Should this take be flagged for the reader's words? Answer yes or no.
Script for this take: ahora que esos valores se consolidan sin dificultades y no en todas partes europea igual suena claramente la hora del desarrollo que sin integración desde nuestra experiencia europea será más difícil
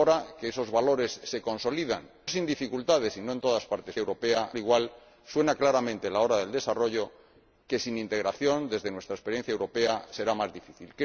no